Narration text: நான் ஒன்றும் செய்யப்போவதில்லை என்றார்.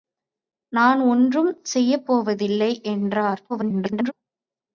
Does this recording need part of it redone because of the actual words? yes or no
yes